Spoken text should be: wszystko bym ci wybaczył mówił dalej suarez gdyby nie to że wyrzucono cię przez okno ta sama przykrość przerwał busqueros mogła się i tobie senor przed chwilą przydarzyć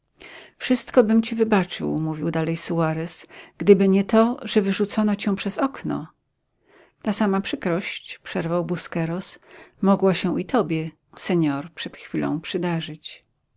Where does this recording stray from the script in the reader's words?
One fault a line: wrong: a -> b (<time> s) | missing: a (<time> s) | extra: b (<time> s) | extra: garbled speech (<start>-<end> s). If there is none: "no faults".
no faults